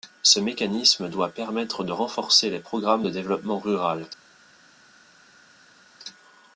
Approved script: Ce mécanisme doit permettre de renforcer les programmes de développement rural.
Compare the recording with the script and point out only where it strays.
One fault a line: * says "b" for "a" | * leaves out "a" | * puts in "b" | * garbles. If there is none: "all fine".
all fine